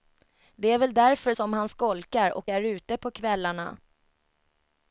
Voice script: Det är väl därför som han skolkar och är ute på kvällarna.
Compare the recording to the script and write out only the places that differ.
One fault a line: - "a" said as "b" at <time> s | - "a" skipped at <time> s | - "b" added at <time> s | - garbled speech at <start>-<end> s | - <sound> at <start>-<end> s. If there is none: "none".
none